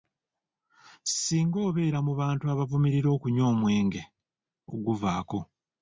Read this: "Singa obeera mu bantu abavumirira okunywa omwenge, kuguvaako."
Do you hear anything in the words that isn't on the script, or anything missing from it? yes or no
no